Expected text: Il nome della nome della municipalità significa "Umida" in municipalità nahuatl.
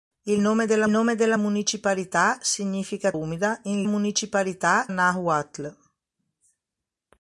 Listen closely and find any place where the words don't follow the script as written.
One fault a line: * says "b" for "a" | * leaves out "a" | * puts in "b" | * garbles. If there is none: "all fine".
all fine